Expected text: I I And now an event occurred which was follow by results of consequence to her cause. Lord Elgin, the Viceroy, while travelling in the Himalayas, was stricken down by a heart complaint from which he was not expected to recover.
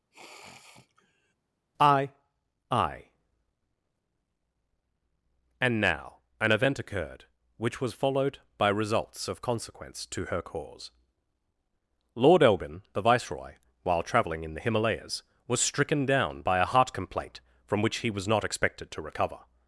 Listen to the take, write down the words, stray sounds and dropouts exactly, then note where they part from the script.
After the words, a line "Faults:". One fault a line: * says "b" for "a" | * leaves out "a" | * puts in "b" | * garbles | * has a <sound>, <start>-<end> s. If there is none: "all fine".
I I And now an event occurred which was followed by results of consequence to her cause. Lord Elgin, the Viceroy, while travelling in the Himalayas, was stricken down by a heart complaint from which he was not expected to recover.
Faults:
* has a sniff, 0.1-1.3 s
* says "followed" for "follow"